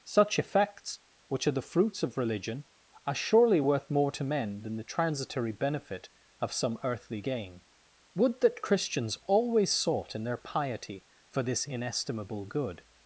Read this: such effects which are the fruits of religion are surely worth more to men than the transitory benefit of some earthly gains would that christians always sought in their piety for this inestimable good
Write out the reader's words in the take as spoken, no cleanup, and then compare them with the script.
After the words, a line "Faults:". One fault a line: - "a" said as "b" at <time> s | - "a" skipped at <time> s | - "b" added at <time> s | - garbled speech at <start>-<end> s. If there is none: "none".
such effects which are the fruits of religion are surely worth more to men than the transitory benefit of some earthly gain would that christians always sought in their piety for this inestimable good
Faults:
- "gains" said as "gain" at 7.2 s